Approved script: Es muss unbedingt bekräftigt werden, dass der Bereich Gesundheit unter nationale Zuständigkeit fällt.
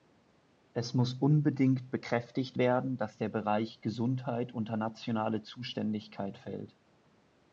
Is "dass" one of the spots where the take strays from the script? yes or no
no